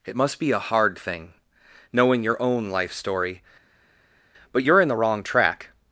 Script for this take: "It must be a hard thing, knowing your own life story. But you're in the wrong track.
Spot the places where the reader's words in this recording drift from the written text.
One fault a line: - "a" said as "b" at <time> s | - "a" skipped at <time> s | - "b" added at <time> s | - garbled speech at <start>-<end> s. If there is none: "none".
none